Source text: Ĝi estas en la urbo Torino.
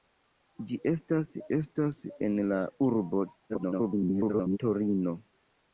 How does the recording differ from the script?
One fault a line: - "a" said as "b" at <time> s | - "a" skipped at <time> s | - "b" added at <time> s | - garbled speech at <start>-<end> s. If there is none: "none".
- "estas" added at 1.6 s
- garbled speech at 3.5-4.6 s